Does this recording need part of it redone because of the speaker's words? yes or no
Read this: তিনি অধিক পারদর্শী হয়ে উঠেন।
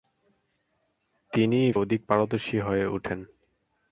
no